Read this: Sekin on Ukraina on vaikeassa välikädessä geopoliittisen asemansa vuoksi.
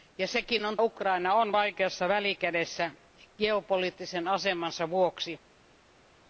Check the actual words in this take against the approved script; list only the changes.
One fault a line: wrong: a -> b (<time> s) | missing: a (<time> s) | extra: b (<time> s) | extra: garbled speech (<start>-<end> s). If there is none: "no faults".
no faults